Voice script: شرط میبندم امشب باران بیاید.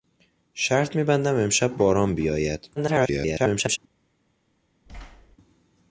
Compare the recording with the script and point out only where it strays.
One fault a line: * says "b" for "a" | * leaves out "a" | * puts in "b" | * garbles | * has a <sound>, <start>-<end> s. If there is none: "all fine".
* garbles
* has a thud, 4.9-5.4 s